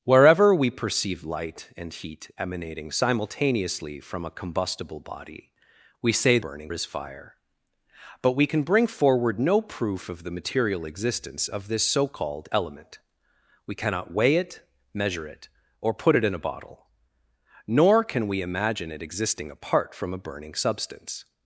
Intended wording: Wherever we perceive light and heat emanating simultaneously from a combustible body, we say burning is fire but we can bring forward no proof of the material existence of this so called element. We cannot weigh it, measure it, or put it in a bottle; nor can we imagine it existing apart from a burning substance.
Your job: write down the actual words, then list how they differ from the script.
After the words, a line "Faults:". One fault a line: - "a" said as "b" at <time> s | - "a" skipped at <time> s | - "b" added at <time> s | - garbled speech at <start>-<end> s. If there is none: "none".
Wherever we perceive light and heat emanating simultaneously from a combustible body, we say burning is fire but we can bring forward no proof of the material existence of this so called element. We cannot weigh it, measure it, or put it in a bottle; nor can we imagine it existing apart from a burning substance.
Faults:
none